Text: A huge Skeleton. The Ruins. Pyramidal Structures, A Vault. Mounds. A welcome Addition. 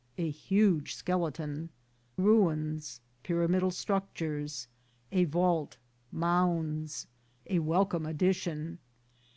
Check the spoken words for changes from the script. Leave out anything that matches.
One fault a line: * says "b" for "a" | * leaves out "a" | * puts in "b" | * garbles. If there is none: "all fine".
* leaves out "The"